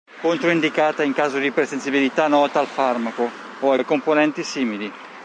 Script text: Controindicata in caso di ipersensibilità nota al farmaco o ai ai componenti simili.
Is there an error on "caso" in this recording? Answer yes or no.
no